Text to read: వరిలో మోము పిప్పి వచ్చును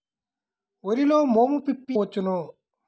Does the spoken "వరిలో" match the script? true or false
true